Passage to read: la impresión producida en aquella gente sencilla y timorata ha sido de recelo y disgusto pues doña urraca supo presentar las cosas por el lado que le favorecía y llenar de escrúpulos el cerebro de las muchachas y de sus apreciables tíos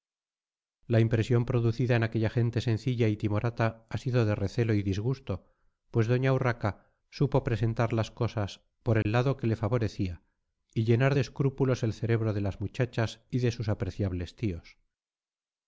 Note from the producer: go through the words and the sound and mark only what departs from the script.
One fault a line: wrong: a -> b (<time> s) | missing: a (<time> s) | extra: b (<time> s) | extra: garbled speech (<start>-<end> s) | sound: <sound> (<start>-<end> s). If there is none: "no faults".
sound: dropout (9.0-9.1 s)